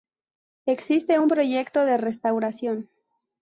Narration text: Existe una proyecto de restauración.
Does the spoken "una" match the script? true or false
false